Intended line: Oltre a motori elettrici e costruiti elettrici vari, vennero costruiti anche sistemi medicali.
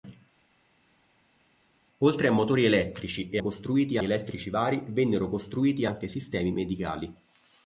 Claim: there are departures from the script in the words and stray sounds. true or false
false